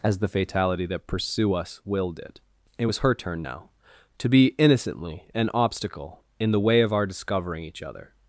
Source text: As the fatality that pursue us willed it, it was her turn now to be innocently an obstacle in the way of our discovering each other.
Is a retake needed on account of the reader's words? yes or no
no